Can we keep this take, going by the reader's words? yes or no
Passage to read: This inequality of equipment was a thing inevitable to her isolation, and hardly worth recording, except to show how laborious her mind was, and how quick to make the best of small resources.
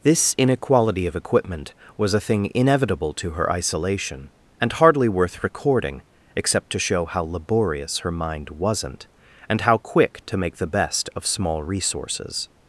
no